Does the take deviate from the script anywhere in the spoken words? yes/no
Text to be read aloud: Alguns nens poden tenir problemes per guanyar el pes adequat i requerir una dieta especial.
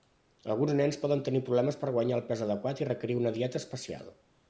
no